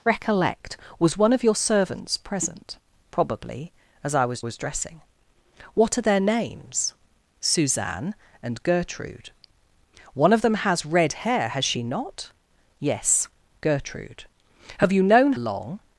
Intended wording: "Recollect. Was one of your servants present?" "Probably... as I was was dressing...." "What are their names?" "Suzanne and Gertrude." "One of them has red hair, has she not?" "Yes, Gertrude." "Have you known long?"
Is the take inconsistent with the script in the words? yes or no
no